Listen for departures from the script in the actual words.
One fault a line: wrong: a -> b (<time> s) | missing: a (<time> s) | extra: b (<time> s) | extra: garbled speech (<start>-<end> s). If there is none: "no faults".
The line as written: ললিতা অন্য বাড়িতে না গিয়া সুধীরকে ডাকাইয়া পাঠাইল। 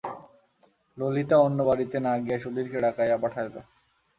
no faults